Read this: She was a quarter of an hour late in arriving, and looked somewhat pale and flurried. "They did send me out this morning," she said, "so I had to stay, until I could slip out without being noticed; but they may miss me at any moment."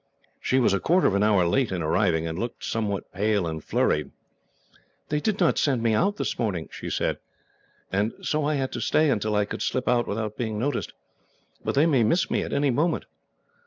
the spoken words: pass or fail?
fail